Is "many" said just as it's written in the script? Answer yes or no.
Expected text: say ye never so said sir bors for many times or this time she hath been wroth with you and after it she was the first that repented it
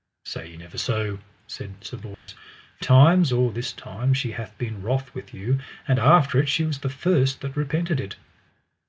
no